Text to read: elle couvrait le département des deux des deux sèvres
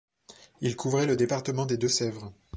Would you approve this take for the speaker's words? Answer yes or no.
no